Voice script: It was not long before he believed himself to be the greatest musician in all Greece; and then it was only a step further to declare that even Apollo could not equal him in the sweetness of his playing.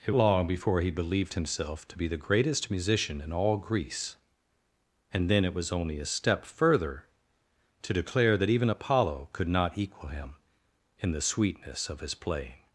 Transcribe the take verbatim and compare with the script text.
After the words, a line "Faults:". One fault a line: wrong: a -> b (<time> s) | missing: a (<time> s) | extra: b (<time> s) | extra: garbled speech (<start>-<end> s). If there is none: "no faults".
It long before he believed himself to be the greatest musician in all Greece; and then it was only a step further to declare that even Apollo could not equal him in the sweetness of his playing.
Faults:
missing: was not (0.1 s)